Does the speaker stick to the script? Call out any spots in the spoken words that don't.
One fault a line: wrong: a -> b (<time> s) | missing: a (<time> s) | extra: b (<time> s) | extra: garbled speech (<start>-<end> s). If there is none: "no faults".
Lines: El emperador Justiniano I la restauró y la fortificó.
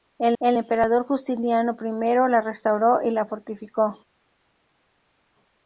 extra: el (0.4 s)